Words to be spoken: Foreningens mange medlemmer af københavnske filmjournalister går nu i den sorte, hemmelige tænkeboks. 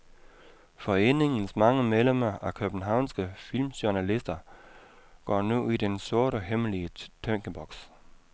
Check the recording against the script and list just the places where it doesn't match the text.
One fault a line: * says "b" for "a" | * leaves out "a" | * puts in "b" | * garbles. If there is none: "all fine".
all fine